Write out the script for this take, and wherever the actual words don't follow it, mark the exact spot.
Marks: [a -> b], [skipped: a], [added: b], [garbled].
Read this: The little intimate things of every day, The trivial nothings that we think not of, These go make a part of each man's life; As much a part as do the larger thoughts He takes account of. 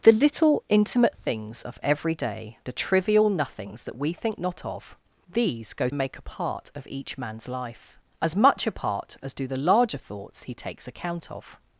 The little intimate things of every day, The trivial nothings that we think not of, These go make a part of each man's life; As much a part as do the larger thoughts He takes account of.